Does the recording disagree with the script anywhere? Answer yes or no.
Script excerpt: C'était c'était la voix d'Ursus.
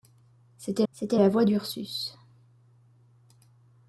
no